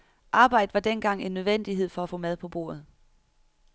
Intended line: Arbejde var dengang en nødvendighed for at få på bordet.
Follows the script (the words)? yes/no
no